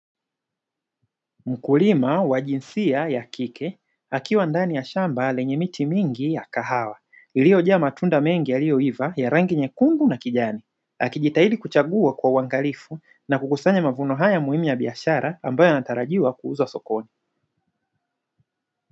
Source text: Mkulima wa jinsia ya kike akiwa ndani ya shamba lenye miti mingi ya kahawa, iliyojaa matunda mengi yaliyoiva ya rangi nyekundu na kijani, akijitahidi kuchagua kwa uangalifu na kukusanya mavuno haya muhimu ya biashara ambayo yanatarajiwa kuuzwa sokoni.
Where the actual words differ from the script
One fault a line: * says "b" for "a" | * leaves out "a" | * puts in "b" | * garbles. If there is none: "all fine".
all fine